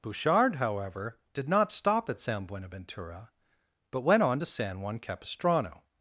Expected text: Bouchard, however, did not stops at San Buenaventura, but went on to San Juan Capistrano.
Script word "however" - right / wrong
right